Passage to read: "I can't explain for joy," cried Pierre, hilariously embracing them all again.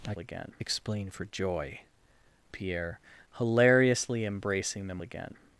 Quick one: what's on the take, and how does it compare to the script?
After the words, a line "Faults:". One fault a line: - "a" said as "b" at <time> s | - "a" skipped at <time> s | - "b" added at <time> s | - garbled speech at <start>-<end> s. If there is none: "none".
"I again explain for joy," Pierre, hilariously embracing them again.
Faults:
- "can't" said as "again" at 0.2 s
- "cried" skipped at 1.8 s
- "all" skipped at 5.0 s